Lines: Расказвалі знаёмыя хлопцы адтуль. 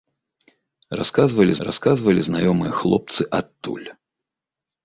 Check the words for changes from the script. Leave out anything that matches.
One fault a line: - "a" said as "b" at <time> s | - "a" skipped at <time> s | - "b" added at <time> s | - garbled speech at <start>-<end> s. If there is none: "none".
- "расказвалі" added at 1.7 s